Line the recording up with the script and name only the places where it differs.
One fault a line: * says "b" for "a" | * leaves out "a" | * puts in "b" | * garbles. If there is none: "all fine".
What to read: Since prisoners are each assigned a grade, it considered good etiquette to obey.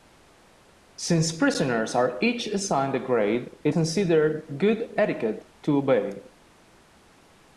all fine